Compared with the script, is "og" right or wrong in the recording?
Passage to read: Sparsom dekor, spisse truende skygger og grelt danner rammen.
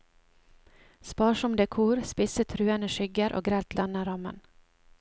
right